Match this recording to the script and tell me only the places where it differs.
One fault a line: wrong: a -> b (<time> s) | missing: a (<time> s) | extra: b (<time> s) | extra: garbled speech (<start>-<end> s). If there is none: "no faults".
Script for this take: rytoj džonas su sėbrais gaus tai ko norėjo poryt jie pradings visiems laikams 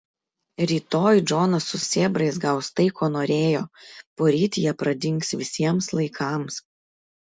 no faults